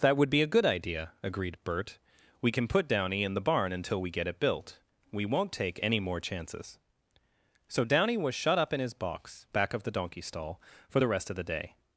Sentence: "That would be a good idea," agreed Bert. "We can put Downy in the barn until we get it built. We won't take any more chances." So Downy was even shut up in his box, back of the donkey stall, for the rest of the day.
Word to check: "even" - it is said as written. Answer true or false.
false